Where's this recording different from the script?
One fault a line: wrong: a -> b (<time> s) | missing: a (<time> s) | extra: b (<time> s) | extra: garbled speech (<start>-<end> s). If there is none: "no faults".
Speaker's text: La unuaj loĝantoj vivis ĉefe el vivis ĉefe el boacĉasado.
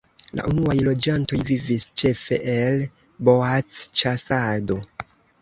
missing: vivis ĉefe el (2.9 s)